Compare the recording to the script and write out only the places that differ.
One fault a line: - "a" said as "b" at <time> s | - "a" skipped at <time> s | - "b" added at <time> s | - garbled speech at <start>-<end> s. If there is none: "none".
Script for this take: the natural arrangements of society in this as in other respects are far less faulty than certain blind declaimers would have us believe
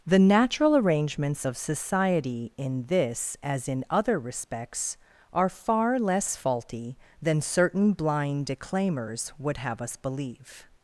none